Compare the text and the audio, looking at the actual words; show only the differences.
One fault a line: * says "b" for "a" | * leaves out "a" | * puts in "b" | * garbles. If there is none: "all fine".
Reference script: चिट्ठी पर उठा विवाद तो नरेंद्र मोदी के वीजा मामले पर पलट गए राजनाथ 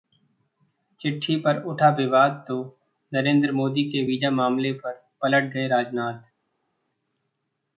all fine